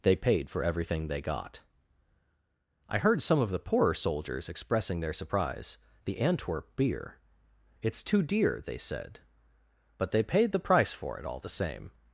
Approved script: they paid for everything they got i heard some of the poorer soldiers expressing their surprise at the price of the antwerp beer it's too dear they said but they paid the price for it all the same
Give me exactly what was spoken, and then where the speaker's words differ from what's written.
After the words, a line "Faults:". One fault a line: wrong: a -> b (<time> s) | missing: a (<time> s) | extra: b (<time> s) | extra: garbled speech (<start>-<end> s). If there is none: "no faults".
they paid for everything they got i heard some of the poorer soldiers expressing their surprise the antwerp beer it's too dear they said but they paid the price for it all the same
Faults:
missing: at the price of (5.8 s)